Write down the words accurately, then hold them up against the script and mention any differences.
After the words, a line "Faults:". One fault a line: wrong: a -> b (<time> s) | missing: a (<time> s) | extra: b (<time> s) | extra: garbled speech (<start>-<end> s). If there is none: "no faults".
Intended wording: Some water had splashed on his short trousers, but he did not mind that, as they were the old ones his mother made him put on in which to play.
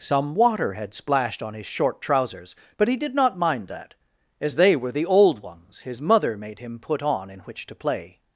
Some water had splashed on his short trousers, but he did not mind that, as they were the old ones his mother made him put on in which to play.
Faults:
no faults